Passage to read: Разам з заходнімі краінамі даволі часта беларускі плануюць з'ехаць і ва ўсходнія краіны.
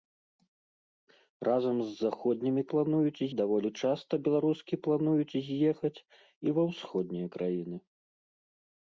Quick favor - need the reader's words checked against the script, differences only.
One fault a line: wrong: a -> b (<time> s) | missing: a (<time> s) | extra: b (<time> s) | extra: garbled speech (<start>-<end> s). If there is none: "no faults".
wrong: краінамі -> плануюць (2.7 s)